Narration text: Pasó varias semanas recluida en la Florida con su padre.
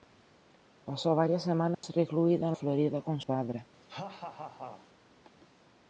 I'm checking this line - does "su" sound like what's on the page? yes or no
no